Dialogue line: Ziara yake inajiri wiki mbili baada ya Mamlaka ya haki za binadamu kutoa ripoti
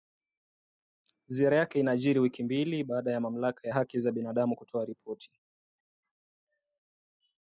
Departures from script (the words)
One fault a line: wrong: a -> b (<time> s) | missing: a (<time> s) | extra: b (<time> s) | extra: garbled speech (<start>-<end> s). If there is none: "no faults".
missing: ya (3.7 s)